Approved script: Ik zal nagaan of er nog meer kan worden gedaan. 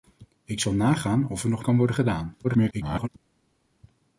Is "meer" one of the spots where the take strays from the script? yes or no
yes